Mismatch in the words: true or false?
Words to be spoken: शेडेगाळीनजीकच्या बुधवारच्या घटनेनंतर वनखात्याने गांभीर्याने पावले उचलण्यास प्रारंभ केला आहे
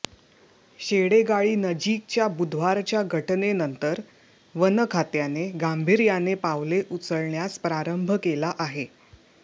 false